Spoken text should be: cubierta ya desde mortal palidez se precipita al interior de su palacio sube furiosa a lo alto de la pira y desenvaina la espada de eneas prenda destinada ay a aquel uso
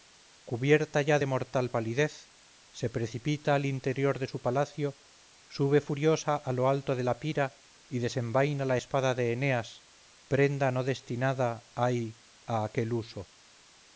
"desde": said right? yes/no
no